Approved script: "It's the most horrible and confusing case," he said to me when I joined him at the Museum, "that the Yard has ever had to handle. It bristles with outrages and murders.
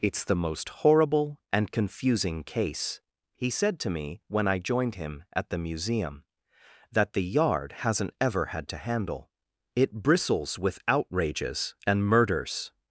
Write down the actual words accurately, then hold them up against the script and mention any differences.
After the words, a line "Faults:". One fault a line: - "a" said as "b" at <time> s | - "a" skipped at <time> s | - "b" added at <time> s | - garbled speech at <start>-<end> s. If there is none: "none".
"It's the most horrible and confusing case," he said to me when I joined him at the Museum, "that the Yard hasn't ever had to handle. It bristles with outrages and murders.
Faults:
- "has" said as "hasn't" at 7.8 s